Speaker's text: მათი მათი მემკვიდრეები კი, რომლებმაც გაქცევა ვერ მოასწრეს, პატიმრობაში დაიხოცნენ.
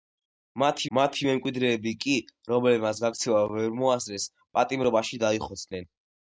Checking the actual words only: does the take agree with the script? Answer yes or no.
yes